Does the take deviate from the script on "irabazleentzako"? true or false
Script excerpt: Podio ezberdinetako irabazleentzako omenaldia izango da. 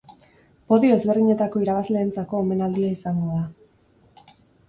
false